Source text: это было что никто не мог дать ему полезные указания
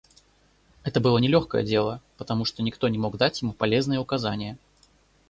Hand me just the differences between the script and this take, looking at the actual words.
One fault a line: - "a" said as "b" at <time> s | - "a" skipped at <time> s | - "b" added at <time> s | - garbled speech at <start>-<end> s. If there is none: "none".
- "нелегкое дело потому" added at 1.2 s